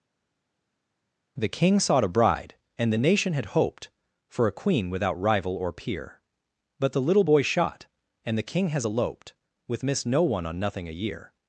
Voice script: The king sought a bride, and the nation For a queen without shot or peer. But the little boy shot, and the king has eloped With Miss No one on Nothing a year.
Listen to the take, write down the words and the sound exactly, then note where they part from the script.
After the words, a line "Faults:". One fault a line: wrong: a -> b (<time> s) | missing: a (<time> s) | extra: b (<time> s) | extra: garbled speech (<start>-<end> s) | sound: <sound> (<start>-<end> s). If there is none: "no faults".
The king sought a bride, and the nation had hoped For a queen without rival or peer. But the little boy shot, and the king has eloped With Miss No one on Nothing a year.
Faults:
extra: had hoped (3.3 s)
wrong: shot -> rival (5.2 s)